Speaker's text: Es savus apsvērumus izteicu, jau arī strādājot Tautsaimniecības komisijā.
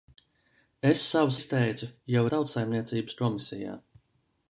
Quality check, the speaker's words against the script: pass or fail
fail